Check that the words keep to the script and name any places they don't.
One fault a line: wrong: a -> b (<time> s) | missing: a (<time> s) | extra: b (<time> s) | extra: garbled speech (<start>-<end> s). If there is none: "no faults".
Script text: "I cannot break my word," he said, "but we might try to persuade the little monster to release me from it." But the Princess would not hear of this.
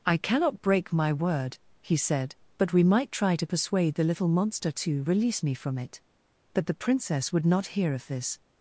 no faults